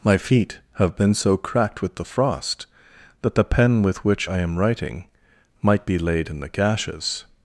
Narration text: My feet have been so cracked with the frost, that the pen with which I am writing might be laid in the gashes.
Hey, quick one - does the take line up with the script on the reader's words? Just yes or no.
yes